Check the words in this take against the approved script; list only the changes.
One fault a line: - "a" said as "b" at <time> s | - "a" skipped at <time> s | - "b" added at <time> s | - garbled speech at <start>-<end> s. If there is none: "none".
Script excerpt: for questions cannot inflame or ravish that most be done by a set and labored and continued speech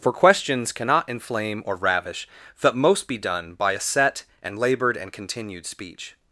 none